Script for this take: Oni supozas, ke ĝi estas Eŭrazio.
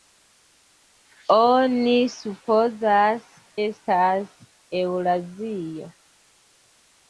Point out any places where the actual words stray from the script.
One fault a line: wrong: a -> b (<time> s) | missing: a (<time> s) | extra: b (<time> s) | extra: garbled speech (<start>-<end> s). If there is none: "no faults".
missing: ke ĝi (3.3 s)